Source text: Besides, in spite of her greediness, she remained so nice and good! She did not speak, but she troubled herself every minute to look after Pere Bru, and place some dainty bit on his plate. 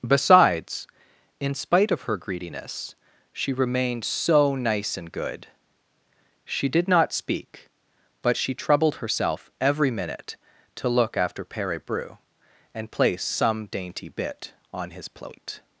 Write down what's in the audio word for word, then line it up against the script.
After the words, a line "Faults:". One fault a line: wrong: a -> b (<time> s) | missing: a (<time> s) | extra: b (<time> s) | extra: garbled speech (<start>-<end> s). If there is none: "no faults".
Besides, in spite of her greediness, she remained so nice and good! She did not speak, but she troubled herself every minute to look after Pere Bru, and place some dainty bit on his plate.
Faults:
no faults